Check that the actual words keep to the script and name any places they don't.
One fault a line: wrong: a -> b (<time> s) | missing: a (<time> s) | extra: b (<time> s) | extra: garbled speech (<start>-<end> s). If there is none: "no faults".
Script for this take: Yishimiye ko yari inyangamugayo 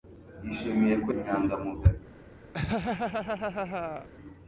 missing: yari (1.1 s)